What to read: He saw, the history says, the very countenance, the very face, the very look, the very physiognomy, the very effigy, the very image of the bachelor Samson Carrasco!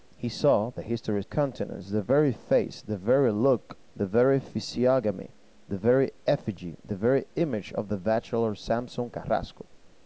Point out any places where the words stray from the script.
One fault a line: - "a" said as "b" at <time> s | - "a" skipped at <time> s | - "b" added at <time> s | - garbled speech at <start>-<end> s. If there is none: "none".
- "says the very" skipped at 1.2 s